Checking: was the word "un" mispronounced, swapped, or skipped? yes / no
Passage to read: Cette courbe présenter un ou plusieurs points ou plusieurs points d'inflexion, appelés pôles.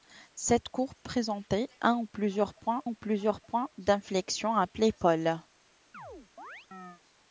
no